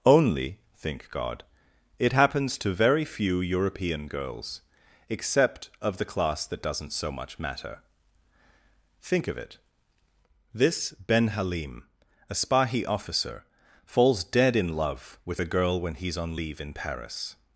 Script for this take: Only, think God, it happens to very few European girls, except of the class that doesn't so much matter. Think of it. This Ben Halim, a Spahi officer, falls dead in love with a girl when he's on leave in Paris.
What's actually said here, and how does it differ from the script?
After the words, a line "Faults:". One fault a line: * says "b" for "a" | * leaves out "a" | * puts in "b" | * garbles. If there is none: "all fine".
Only, think God, it happens to very few European girls, except of the class that doesn't so much matter. Think of it. This Ben Halim, a Spahi officer, falls dead in love with a girl when he's on leave in Paris.
Faults:
all fine